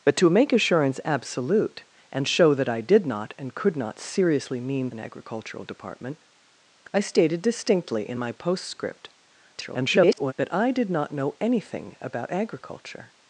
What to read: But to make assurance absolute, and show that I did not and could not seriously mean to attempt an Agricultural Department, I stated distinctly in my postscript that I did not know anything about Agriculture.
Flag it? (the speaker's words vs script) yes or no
yes